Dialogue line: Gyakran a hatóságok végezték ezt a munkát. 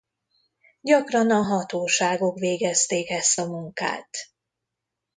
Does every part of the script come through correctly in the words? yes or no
yes